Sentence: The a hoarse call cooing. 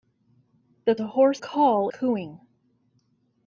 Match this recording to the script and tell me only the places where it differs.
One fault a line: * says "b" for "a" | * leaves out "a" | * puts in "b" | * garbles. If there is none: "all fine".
all fine